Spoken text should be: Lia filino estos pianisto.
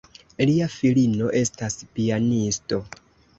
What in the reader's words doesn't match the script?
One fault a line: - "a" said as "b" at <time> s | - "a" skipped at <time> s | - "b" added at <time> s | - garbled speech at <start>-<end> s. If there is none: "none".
- "estos" said as "estas" at 1.4 s